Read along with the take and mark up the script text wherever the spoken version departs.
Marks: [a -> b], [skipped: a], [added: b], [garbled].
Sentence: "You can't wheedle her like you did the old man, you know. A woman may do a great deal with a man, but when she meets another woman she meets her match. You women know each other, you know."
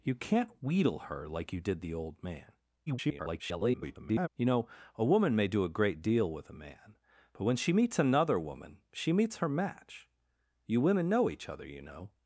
"You can't wheedle her like you did the old man, [garbled] you know. A woman may do a great deal with a man, but when she meets another woman she meets her match. You women know each other, you know."